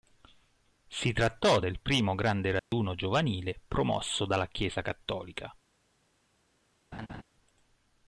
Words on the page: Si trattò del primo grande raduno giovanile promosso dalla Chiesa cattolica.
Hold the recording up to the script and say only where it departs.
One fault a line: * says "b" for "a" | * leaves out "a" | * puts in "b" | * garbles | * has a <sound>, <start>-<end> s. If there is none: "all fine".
* has a dropout, 2.6-2.7 s
* has a laugh, 6.9-7.2 s